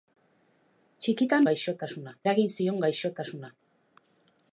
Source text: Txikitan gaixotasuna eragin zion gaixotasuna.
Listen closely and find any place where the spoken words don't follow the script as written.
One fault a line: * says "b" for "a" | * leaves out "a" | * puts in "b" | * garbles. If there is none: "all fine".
all fine